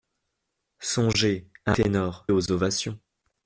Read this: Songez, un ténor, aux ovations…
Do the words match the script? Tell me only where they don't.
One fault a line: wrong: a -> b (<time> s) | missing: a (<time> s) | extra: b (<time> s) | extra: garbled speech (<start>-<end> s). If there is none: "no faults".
no faults